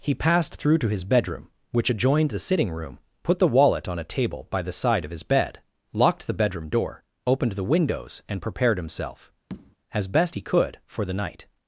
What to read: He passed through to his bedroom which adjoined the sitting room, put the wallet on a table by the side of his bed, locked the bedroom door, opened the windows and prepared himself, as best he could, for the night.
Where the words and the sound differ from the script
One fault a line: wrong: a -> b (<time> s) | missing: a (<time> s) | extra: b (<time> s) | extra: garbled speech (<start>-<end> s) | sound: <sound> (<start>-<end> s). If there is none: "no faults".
sound: tap (9.5-9.8 s)